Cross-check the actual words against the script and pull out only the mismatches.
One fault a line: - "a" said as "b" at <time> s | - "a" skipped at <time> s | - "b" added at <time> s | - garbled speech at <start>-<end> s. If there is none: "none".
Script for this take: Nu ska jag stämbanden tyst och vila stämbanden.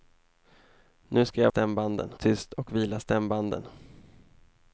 none